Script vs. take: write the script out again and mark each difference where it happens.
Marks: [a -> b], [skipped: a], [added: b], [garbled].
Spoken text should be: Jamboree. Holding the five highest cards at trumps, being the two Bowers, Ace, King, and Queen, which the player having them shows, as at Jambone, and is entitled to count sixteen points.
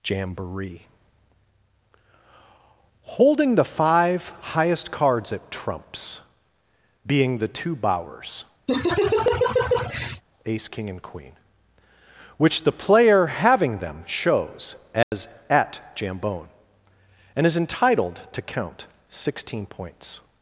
Jamboree. Holding the five highest cards at trumps, being the two Bowers, Ace, King, and Queen, which the player having them shows, as at Jambone, and is entitled to count sixteen points.